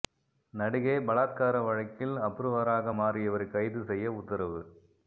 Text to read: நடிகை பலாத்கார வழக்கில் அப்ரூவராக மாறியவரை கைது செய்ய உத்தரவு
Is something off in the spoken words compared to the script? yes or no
no